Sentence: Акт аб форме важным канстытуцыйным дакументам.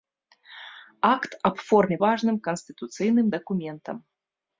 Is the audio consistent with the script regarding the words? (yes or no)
yes